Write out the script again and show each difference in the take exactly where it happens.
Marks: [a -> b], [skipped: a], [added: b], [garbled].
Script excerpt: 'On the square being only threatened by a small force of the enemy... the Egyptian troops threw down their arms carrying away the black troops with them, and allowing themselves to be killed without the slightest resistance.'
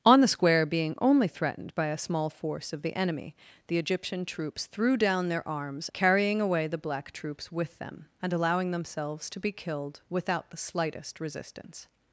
'On the square being only threatened by a small force of the enemy... the Egyptian troops threw down their arms carrying away the black troops with them, and allowing themselves to be killed without the slightest resistance.'